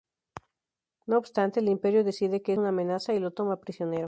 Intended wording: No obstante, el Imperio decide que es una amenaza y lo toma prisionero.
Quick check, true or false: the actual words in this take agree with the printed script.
false